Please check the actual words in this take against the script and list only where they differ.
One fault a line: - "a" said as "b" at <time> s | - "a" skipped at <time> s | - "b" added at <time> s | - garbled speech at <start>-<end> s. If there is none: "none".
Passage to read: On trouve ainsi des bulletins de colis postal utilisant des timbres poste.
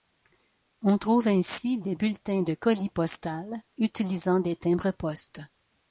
none